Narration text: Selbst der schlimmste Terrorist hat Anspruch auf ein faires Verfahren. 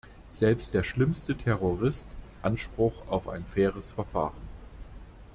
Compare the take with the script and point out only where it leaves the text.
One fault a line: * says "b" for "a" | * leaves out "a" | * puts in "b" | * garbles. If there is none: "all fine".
* leaves out "hat"